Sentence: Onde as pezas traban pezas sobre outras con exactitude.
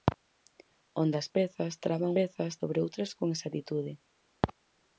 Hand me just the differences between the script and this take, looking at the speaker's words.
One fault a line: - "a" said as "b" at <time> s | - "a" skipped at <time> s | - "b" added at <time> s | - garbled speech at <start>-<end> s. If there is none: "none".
none